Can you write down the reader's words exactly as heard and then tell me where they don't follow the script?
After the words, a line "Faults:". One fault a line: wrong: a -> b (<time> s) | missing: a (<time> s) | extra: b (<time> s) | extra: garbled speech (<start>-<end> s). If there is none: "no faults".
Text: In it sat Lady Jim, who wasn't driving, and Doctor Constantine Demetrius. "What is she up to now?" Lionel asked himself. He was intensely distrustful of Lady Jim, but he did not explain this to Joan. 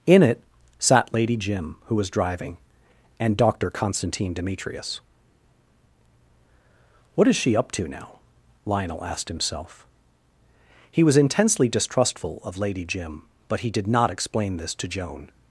In it sat Lady Jim, who was driving, and Doctor Constantine Demetrius. "What is she up to now?" Lionel asked himself. He was intensely distrustful of Lady Jim, but he did not explain this to Joan.
Faults:
wrong: wasn't -> was (1.9 s)